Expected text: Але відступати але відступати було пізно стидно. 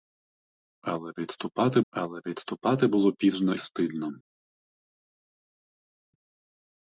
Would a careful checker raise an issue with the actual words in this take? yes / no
no